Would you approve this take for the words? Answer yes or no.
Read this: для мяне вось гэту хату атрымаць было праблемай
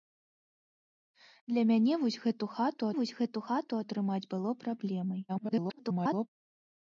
no